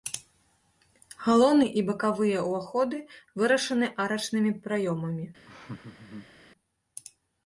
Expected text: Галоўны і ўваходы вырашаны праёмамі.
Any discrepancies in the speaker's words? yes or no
yes